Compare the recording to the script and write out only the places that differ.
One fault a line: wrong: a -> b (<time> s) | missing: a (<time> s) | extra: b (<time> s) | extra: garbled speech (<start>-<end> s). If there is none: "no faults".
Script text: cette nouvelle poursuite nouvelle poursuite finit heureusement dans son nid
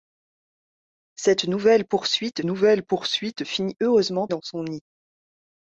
no faults